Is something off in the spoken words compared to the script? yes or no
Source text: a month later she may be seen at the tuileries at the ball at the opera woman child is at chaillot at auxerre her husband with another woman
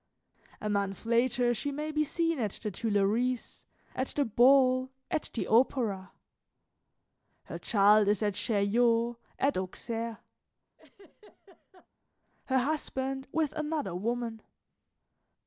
yes